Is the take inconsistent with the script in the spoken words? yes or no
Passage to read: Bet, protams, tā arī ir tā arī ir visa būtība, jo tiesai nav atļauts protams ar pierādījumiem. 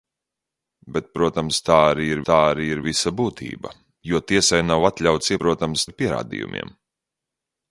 no